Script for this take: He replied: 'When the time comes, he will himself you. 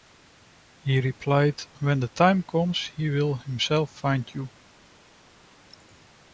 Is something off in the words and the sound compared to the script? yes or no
yes